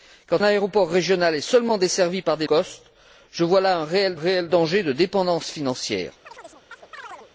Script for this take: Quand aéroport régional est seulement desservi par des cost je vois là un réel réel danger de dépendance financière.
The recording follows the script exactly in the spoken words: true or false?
true